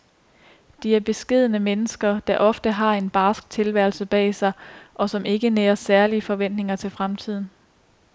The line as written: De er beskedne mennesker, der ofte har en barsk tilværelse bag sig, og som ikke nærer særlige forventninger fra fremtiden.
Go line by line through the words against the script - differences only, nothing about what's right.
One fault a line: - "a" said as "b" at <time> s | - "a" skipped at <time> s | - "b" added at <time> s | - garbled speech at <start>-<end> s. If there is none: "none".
- "fra" said as "til" at 6.8 s